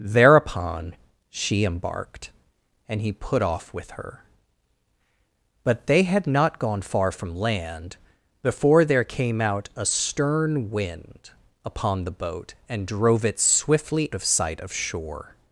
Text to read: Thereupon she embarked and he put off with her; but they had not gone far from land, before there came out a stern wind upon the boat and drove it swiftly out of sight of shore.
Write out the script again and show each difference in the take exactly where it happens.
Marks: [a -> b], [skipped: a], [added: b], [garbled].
Thereupon she embarked and he put off with her; but they had not gone far from land, before there came out a stern wind upon the boat and drove it swiftly [skipped: out] of sight of shore.